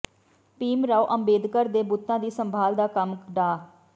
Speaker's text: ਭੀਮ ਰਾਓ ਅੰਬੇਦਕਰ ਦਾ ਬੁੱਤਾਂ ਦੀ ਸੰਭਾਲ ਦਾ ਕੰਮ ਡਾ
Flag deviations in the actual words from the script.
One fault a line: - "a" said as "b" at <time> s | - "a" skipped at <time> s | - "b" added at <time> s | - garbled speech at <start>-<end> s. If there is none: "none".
- "ਦਾ" said as "ਦੇ" at 1.7 s